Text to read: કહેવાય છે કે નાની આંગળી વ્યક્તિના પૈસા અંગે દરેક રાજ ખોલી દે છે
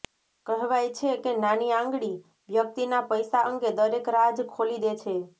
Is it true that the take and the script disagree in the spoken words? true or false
false